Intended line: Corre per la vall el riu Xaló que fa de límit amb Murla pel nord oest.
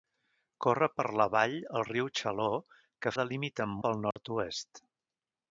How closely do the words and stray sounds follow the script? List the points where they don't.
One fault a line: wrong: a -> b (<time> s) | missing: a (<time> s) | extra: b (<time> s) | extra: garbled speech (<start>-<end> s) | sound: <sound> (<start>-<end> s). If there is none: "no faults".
missing: fa (3.1 s)
missing: Murla (3.8 s)
sound: dropout (4.1-4.2 s)